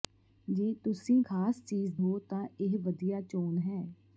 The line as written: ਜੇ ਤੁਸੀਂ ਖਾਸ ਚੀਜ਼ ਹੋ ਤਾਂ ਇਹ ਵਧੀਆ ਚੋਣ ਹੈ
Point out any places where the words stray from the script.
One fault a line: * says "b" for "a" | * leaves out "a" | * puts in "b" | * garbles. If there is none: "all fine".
all fine